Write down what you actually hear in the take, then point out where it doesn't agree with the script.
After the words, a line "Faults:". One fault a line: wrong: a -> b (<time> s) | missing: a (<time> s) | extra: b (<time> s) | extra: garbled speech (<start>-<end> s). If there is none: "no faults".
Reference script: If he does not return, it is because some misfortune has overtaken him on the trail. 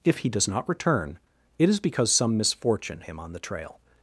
If he does not return, it is because some misfortune him on the trail.
Faults:
missing: has overtaken (3.0 s)